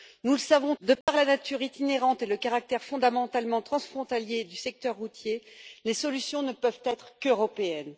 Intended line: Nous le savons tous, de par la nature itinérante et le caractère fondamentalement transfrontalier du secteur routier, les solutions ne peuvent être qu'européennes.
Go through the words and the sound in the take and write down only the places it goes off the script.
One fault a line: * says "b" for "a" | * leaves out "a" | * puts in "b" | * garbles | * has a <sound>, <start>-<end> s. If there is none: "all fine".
* leaves out "tous"
* has a dropout, 1.0-1.1 s